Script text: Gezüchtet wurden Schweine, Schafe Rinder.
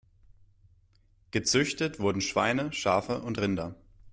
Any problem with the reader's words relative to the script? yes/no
yes